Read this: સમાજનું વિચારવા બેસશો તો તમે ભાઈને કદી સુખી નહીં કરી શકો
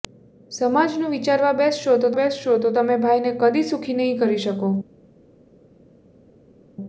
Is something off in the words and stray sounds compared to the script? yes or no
yes